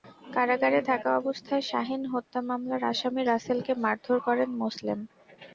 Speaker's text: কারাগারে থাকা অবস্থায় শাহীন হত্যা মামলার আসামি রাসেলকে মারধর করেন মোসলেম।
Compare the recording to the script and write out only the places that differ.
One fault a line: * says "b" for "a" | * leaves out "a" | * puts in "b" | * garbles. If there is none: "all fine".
all fine